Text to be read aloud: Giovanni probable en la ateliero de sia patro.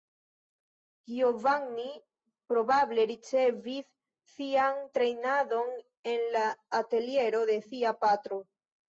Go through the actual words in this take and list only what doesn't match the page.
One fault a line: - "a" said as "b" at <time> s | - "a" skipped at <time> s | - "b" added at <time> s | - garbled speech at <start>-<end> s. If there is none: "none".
- "ricevis sian trejnadon" added at 3.1 s